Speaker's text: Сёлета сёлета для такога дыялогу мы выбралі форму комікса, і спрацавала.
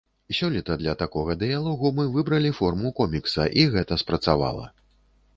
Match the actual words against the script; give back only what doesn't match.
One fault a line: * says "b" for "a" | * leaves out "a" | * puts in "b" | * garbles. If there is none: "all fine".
* leaves out "сёлета"
* puts in "гэта"